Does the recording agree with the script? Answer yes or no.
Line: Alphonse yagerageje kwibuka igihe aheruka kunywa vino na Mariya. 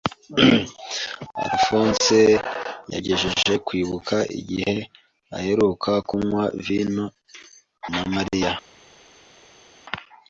yes